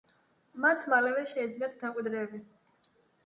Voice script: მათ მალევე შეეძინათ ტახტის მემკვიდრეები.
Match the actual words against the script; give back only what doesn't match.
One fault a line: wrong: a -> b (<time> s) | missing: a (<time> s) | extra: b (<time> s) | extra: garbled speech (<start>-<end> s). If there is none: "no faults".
missing: ტახტის (1.8 s)